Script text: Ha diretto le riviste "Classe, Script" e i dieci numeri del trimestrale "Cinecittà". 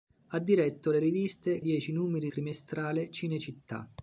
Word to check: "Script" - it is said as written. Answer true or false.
false